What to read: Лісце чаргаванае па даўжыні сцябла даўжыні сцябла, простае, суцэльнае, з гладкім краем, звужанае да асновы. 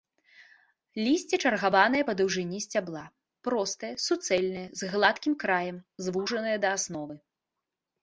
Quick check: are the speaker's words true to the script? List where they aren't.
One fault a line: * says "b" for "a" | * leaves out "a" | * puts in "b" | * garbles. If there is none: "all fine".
* leaves out "даўжыні сцябла"